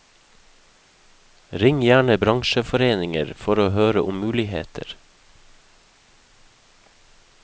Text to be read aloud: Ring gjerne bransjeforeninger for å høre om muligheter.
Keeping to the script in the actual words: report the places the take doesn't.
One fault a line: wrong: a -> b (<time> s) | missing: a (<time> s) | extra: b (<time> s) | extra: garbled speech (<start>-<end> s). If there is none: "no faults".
no faults